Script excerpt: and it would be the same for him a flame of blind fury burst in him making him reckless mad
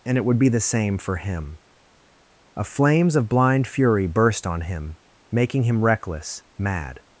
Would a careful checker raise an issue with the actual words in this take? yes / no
yes